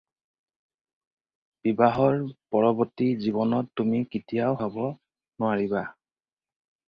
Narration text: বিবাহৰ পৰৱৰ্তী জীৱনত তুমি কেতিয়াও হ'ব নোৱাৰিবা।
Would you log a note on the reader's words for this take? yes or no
no